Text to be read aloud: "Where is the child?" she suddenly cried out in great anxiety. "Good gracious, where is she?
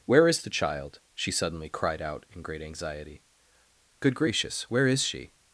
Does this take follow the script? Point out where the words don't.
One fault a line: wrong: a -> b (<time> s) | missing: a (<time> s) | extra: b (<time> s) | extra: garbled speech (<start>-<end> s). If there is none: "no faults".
no faults